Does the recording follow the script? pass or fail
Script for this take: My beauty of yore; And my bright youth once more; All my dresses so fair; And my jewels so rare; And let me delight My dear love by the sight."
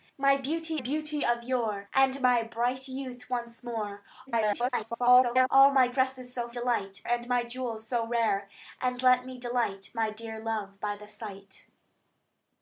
fail